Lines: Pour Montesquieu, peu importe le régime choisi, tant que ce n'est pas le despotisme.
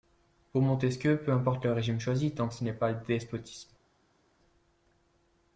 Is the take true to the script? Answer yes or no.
yes